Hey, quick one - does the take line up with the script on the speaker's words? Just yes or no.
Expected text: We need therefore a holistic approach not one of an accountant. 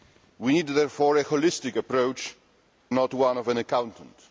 yes